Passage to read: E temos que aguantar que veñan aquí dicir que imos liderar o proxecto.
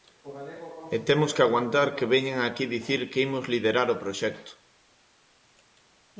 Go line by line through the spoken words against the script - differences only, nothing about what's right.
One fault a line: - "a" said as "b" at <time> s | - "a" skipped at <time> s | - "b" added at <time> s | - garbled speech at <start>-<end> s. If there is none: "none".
none